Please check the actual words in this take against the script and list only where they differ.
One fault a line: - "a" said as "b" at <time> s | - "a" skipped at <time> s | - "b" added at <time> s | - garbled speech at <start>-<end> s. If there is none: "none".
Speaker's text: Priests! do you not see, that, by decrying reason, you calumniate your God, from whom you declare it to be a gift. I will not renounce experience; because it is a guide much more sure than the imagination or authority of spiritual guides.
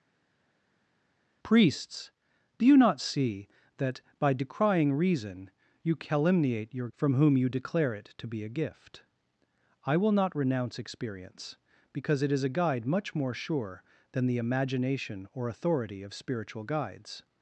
- "God" skipped at 6.9 s